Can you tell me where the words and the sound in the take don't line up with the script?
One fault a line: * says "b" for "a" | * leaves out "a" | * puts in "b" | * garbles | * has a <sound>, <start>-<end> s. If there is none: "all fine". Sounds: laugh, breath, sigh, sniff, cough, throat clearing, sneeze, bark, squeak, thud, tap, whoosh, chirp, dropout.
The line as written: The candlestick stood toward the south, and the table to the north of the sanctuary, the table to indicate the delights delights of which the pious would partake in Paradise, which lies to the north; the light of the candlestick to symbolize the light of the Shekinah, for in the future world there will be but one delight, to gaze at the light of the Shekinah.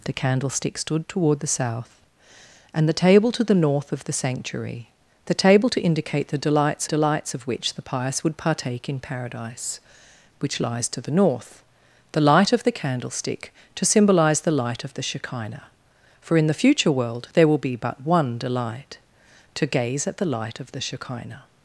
all fine